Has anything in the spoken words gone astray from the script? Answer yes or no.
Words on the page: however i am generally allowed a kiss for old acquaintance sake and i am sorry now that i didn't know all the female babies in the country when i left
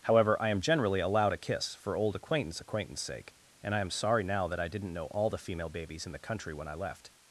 yes